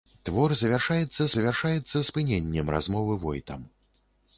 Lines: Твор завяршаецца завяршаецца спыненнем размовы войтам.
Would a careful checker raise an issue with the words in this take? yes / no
no